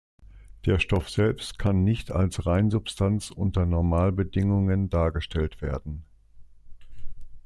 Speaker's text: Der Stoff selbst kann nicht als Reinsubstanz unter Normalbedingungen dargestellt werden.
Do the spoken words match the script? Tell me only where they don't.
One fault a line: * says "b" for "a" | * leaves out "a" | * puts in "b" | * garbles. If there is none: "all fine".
all fine